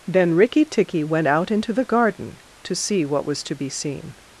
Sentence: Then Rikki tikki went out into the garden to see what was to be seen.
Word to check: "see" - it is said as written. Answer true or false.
true